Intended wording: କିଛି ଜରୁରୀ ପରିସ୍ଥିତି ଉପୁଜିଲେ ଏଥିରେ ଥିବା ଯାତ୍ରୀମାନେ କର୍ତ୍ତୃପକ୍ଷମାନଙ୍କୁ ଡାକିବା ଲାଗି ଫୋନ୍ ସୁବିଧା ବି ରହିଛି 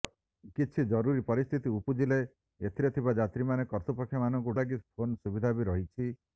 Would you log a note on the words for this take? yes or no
yes